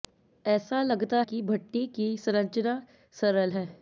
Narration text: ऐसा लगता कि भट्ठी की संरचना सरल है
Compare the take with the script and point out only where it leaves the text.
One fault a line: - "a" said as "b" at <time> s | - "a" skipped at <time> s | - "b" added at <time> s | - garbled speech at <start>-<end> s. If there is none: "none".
none